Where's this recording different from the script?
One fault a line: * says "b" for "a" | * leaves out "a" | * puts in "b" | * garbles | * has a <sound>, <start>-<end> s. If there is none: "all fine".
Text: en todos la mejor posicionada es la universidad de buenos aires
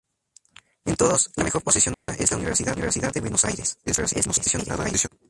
* has a dropout, 1.9-2.1 s
* puts in "universidad"
* garbles